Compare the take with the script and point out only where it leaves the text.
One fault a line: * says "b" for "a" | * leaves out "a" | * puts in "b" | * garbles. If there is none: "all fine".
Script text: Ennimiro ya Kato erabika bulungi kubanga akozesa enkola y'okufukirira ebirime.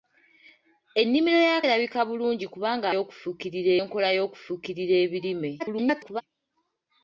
* leaves out "Kato"
* says "y'okufukirira" for "akozesa"
* garbles